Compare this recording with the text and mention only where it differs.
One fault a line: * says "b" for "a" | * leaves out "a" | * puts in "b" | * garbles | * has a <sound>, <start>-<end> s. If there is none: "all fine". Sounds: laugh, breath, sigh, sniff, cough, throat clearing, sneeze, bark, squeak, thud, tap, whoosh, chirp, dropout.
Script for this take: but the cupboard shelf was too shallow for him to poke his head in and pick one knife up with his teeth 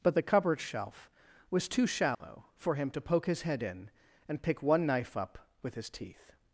* has a dropout, 2.1-2.2 s